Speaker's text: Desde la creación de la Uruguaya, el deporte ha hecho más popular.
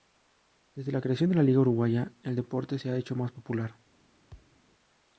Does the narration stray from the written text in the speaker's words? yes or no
yes